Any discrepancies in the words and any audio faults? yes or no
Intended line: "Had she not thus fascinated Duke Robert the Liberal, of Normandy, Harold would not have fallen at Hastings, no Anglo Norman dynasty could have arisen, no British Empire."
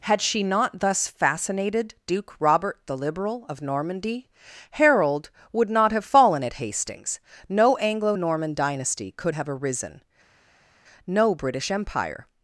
no